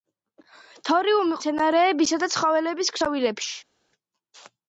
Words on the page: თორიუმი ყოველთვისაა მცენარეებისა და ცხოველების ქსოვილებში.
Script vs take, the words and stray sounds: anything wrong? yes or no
yes